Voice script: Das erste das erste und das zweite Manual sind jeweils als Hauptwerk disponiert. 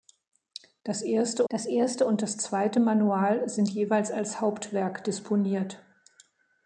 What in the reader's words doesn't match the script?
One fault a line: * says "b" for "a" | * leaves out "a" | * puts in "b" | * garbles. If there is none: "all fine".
all fine